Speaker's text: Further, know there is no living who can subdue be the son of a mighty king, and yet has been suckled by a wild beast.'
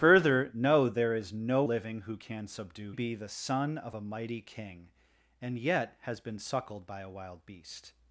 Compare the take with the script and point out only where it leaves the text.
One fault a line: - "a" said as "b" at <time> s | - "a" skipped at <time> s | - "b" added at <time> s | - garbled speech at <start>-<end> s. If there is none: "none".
none